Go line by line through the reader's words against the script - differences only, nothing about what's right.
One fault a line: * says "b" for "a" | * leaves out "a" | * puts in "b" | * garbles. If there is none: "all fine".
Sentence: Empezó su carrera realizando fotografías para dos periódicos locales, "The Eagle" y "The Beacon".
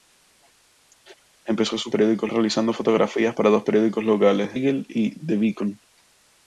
* says "periódicos" for "carrera"
* leaves out "The"